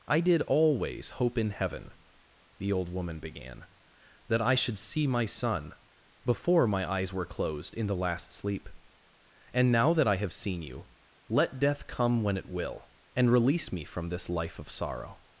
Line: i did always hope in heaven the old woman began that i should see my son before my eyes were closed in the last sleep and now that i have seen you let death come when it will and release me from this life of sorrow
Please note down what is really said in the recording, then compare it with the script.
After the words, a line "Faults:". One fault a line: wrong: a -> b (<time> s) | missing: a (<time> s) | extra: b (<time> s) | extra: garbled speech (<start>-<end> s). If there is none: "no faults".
i did always hope in heaven the old woman began that i should see my son before my eyes were closed in the last sleep and now that i have seen you let death come when it will and release me from this life of sorrow
Faults:
no faults